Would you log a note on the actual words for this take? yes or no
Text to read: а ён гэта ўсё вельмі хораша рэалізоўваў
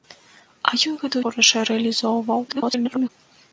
yes